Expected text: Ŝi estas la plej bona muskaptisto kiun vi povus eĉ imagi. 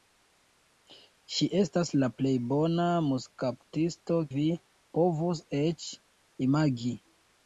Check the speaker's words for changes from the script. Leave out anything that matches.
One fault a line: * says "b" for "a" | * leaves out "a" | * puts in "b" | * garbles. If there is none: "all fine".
* leaves out "kiun"